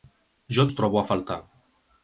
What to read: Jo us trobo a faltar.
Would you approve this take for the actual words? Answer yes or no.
yes